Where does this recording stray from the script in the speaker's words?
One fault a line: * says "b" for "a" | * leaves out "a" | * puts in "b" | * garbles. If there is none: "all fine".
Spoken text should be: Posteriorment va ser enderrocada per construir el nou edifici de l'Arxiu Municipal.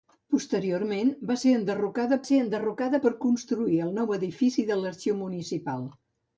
* puts in "ser enderrocada"